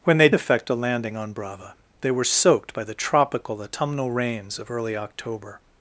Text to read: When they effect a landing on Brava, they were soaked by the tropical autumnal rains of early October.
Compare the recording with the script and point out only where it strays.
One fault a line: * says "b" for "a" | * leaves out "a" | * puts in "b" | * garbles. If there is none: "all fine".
all fine